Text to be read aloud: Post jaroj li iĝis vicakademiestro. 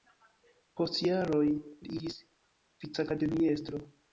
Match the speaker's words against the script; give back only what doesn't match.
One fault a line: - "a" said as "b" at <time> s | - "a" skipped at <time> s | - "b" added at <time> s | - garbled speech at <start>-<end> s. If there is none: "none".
none